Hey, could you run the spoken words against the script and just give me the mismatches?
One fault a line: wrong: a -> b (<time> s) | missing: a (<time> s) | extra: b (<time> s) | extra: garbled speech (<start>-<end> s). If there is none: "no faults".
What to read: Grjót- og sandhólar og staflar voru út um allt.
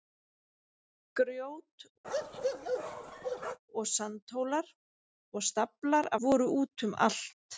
no faults